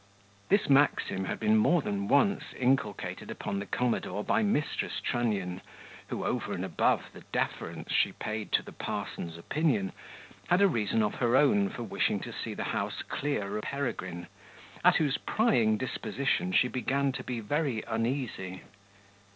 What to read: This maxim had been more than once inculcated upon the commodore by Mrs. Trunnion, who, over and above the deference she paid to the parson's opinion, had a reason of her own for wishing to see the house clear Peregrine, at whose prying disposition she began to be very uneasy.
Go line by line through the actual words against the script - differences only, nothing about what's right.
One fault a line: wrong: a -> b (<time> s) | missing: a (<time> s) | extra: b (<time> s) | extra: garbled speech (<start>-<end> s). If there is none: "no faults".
no faults